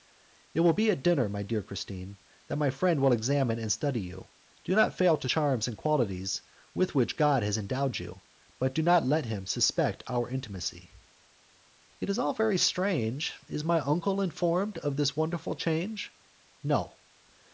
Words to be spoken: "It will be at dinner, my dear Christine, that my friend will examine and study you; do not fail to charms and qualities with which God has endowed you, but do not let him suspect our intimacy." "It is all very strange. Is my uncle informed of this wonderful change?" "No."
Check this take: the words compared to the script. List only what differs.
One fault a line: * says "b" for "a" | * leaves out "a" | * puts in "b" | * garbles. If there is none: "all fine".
all fine